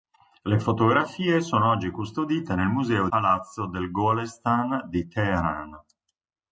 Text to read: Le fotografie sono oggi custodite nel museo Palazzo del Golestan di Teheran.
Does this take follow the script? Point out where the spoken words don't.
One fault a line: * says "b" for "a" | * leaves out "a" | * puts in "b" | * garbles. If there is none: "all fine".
all fine